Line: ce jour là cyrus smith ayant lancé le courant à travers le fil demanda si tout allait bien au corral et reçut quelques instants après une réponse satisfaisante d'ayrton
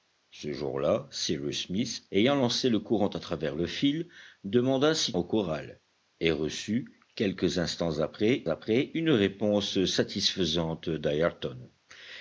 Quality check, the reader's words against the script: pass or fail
fail